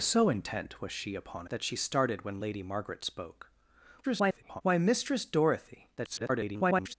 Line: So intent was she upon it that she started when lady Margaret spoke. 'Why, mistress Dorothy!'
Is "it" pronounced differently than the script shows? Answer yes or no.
yes